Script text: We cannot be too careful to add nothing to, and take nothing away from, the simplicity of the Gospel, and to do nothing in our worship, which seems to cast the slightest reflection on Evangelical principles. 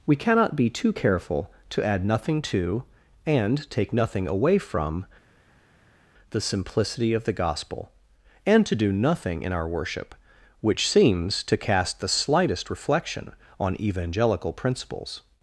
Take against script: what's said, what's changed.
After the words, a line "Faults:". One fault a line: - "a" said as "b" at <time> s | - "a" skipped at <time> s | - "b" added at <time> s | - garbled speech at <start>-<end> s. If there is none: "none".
We cannot be too careful to add nothing to, and take nothing away from, the simplicity of the Gospel, and to do nothing in our worship, which seems to cast the slightest reflection on Evangelical principles.
Faults:
none